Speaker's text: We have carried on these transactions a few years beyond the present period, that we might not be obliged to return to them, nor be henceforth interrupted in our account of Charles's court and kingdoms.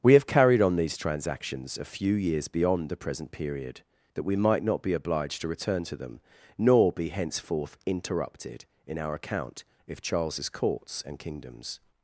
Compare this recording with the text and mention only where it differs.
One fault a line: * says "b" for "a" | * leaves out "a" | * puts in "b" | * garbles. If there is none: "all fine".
* says "courts" for "court"